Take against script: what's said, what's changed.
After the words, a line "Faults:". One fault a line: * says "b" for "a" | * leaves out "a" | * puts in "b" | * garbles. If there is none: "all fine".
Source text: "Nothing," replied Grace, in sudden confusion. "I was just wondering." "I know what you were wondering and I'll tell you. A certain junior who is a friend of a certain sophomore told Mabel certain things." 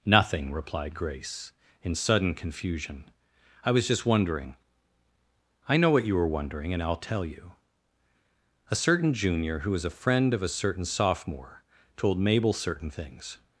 "Nothing," replied Grace, in sudden confusion. "I was just wondering." "I know what you were wondering and I'll tell you. A certain junior who was a friend of a certain sophomore told Mabel certain things."
Faults:
* says "was" for "is"